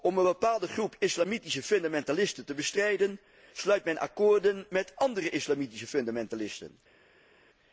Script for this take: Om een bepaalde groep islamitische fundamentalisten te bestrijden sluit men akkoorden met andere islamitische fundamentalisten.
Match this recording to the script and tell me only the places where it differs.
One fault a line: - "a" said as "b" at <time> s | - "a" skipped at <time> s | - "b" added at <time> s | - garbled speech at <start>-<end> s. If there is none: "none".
none